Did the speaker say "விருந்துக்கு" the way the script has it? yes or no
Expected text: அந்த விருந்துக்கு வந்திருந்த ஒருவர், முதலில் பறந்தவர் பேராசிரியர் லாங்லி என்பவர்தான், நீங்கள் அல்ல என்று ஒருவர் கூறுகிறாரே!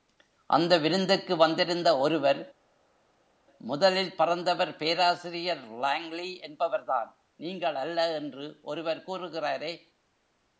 yes